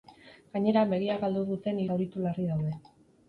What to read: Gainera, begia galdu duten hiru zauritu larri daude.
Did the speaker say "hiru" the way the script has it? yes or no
no